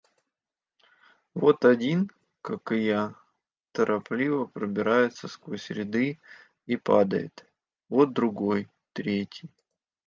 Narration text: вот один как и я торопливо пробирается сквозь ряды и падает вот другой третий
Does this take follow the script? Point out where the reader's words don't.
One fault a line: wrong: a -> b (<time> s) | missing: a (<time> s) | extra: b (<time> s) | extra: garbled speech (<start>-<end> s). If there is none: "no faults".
no faults